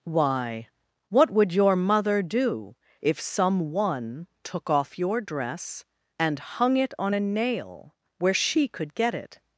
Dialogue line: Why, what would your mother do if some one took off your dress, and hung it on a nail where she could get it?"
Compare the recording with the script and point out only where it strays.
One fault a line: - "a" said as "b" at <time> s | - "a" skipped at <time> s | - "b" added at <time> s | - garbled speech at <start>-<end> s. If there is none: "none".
none